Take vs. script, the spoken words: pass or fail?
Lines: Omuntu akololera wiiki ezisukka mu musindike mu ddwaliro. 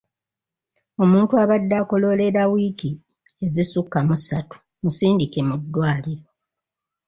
fail